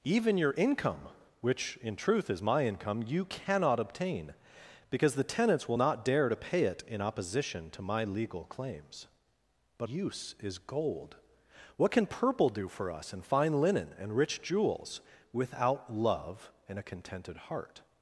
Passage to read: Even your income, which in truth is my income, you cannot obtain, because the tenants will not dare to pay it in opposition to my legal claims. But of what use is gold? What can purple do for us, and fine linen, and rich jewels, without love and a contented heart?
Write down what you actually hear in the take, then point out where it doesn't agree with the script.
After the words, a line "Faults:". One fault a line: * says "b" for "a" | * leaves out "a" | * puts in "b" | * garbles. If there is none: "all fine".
Even your income, which in truth is my income, you cannot obtain, because the tenants will not dare to pay it in opposition to my legal claims. But use is gold? What can purple do for us, and fine linen, and rich jewels, without love and a contented heart?
Faults:
* leaves out "of what"